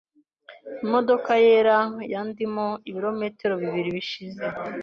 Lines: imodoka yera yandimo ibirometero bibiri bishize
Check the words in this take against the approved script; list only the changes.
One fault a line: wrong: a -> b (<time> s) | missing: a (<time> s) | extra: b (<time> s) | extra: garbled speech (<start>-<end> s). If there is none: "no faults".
no faults